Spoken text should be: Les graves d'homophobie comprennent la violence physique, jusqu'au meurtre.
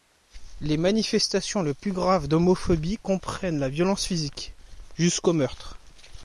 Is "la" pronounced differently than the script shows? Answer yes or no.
no